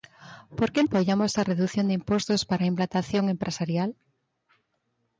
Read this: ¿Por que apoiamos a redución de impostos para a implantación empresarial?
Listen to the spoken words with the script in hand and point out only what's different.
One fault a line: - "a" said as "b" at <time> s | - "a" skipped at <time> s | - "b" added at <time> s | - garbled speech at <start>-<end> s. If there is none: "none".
none